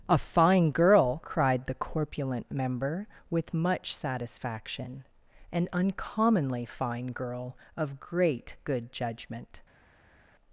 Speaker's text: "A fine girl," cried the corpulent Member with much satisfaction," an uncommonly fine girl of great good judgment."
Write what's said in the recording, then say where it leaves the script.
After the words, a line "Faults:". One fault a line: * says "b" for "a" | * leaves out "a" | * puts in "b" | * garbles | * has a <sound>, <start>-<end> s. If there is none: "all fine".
"A fine girl," cried the corpulent Member with much satisfaction," an uncommonly fine girl of great good judgment."
Faults:
all fine